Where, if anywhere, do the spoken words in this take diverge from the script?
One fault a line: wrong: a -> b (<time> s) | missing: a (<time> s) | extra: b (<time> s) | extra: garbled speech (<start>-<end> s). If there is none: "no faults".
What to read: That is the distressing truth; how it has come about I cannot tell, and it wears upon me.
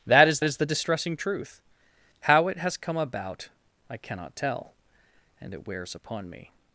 extra: is (0.4 s)